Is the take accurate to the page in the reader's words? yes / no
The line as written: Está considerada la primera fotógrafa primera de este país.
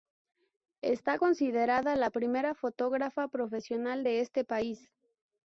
no